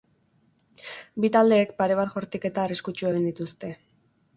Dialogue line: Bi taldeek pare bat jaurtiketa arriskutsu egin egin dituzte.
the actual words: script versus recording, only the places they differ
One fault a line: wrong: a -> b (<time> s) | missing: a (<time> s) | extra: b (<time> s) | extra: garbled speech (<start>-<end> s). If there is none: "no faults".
missing: egin (3.3 s)